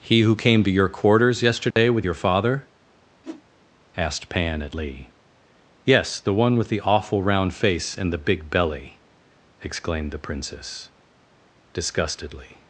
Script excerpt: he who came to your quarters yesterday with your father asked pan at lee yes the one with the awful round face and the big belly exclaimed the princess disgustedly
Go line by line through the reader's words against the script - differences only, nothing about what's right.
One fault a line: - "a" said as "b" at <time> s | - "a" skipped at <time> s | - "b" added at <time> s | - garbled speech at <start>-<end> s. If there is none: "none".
none